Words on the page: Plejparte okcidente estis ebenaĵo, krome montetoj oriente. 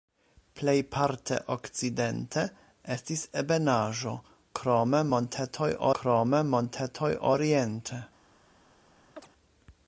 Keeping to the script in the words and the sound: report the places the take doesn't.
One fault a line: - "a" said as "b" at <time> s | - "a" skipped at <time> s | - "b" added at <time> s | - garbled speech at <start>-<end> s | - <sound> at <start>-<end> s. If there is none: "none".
- "krome montetoj" added at 6.0 s
- chirp at 9.2-9.3 s